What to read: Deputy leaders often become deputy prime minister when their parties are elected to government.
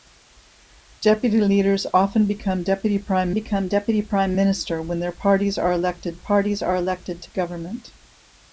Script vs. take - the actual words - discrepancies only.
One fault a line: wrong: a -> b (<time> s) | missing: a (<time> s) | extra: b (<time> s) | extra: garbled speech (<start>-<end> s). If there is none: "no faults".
extra: become deputy prime (3.3 s)
extra: parties are elected (6.2 s)